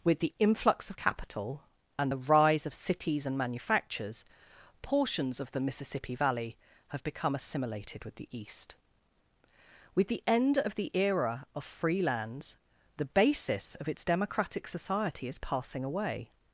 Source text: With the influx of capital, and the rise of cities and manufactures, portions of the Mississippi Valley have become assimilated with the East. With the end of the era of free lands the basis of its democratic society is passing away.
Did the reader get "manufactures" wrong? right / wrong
right